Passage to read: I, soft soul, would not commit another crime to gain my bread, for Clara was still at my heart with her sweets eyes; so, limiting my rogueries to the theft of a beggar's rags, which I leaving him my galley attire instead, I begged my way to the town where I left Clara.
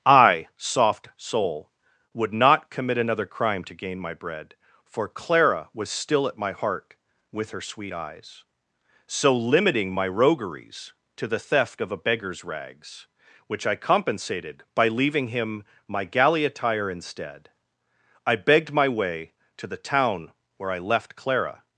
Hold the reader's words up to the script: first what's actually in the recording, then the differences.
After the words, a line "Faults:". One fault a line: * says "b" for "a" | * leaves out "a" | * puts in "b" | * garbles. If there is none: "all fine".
I, soft soul, would not commit another crime to gain my bread, for Clara was still at my heart with her sweet eyes; so, limiting my rogueries to the theft of a beggar's rags, which I compensated by leaving him my galley attire instead, I begged my way to the town where I left Clara.
Faults:
* says "sweet" for "sweets"
* puts in "compensated by"